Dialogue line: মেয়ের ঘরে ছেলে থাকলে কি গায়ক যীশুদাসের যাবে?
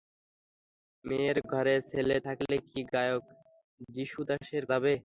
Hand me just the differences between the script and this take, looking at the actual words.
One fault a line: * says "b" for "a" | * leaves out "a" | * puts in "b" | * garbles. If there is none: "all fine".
all fine